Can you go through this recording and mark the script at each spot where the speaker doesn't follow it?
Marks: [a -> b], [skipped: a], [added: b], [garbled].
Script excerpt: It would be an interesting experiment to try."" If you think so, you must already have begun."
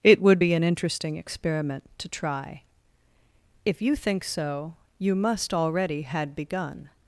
It would be an interesting experiment to try."" If you think so, you must already [have -> had] begun."